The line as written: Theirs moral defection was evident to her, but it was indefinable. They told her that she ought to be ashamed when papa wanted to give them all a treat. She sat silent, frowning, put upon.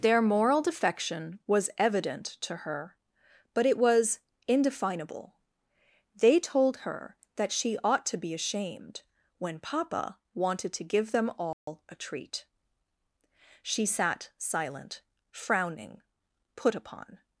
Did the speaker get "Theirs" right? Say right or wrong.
wrong